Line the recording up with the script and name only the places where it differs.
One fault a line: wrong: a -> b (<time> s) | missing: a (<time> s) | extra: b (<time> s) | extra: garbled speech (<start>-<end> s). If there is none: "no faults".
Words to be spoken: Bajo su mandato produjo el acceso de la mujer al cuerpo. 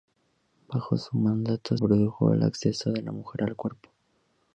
no faults